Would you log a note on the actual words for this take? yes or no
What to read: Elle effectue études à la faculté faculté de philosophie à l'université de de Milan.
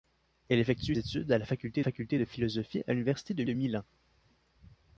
no